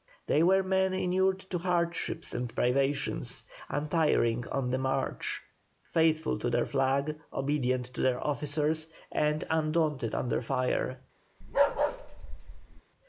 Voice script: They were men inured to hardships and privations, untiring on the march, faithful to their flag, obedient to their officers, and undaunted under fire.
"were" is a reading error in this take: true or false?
false